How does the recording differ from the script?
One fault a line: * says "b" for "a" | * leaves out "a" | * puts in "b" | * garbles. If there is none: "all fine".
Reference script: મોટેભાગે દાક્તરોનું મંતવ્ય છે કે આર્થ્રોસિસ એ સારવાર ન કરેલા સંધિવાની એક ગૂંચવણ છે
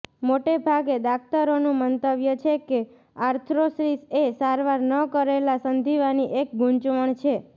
all fine